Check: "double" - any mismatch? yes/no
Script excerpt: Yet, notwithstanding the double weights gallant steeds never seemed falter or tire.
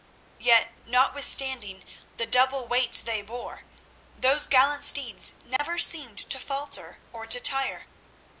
no